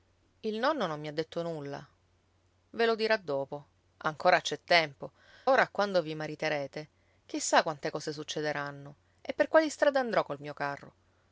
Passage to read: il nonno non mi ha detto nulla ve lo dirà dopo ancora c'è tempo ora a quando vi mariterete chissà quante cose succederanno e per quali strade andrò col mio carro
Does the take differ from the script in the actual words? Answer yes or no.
no